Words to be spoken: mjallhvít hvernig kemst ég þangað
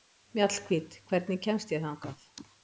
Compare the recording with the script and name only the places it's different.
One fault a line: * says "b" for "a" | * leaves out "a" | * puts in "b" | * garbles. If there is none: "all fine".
all fine